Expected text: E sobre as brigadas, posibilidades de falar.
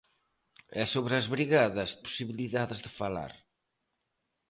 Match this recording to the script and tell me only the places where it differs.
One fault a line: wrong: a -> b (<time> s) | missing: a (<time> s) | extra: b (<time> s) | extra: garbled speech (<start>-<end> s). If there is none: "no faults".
no faults